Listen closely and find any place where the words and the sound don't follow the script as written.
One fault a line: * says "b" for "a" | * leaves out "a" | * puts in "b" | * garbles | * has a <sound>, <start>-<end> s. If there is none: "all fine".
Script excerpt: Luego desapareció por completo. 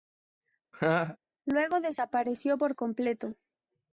* has a laugh, 0.7-1.2 s